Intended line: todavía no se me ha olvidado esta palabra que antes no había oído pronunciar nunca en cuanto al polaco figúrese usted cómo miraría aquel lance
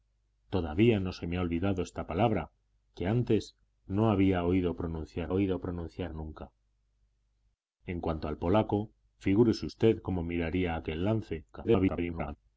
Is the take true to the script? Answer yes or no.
no